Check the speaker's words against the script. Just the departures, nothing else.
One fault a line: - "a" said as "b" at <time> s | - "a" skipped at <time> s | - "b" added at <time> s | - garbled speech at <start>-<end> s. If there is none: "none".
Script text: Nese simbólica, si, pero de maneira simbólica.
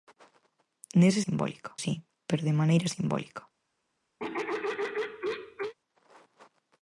none